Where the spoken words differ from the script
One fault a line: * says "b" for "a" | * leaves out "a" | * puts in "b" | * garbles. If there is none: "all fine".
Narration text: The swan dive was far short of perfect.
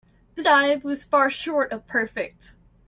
* leaves out "swan"